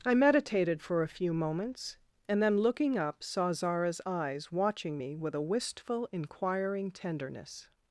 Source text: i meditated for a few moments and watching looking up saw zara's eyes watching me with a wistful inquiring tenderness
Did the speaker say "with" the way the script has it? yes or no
yes